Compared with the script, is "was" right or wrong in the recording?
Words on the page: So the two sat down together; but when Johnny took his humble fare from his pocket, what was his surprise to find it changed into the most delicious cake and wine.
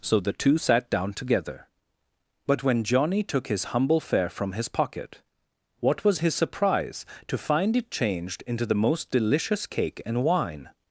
right